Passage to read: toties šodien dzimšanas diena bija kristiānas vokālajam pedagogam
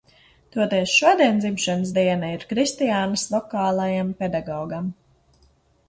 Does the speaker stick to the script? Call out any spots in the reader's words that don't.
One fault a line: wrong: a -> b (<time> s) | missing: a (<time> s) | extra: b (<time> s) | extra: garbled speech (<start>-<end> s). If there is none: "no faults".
wrong: bija -> ir (2.4 s)